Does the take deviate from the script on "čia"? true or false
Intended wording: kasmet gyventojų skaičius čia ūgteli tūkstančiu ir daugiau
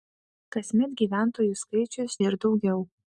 true